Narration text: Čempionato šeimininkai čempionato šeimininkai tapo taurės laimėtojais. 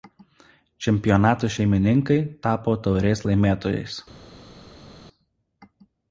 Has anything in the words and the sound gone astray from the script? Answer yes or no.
yes